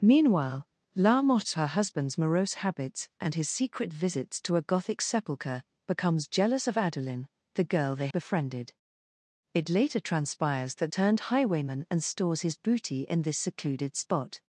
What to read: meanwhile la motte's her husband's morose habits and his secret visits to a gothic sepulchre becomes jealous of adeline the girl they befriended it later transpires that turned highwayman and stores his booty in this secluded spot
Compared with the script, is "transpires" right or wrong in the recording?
right